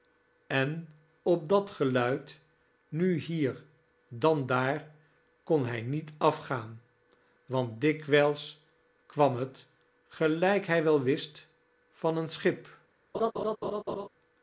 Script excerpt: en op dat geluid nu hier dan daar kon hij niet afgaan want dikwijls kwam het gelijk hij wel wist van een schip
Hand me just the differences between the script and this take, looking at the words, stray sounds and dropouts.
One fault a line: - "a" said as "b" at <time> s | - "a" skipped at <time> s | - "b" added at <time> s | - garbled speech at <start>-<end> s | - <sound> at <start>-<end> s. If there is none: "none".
- laugh at 13.1-14.1 s